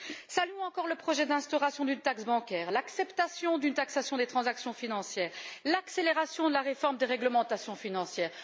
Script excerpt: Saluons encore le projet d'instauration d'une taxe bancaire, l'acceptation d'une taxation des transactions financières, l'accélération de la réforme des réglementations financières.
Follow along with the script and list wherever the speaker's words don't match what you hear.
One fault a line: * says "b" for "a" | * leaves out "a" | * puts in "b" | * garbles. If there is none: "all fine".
all fine